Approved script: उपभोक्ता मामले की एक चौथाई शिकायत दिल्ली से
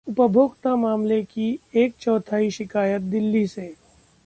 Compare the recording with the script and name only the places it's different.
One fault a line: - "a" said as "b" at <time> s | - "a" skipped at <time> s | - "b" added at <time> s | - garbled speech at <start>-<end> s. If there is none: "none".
none